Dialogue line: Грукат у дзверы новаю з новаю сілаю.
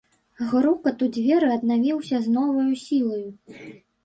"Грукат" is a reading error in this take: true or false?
false